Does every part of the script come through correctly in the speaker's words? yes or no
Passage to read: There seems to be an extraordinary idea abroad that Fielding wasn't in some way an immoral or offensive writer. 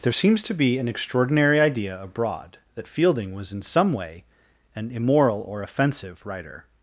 no